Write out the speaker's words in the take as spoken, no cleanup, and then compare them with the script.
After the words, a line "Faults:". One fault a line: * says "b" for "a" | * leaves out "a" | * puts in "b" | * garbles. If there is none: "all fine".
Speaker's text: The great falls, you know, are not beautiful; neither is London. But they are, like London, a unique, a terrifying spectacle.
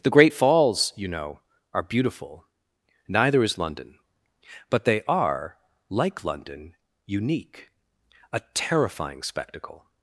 The great falls, you know, are beautiful; neither is London. But they are, like London, unique, a terrifying spectacle.
Faults:
* leaves out "not"
* leaves out "a"